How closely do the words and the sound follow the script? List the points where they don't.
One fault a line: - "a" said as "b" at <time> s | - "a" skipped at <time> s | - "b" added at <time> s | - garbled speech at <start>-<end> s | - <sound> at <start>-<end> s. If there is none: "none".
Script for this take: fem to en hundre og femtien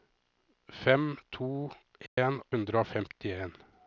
- dropout at 2.1-2.2 s